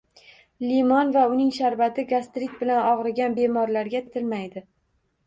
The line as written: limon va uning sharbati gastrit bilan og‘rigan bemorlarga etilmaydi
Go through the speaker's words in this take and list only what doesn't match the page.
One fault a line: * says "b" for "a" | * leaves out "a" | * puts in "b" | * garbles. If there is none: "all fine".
all fine